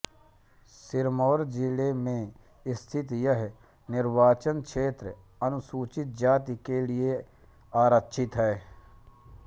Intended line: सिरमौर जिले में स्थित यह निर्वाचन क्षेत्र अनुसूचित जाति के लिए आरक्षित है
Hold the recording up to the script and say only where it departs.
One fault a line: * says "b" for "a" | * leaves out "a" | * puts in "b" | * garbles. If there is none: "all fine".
all fine